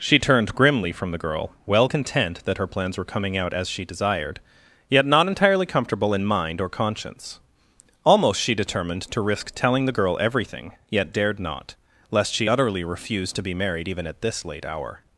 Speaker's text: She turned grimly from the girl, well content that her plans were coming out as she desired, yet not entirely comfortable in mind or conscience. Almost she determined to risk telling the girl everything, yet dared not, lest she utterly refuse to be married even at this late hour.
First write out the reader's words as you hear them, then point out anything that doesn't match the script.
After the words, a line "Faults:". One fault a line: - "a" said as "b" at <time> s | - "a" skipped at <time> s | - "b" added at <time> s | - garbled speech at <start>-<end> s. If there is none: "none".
She turned grimly from the girl, well content that her plans were coming out as she desired, yet not entirely comfortable in mind or conscience. Almost she determined to risk telling the girl everything, yet dared not, lest she utterly refuse to be married even at this late hour.
Faults:
none